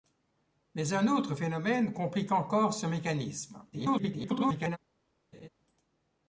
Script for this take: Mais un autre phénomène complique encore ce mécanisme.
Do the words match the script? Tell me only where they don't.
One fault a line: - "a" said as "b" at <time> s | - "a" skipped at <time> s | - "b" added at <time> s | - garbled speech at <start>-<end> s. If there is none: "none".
- garbled speech at 3.7-4.8 s